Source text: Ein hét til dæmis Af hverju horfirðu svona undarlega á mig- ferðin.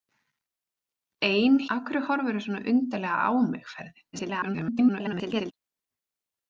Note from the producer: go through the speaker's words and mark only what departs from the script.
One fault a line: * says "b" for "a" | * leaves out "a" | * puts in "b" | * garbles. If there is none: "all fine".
* leaves out "hét til dæmis"
* garbles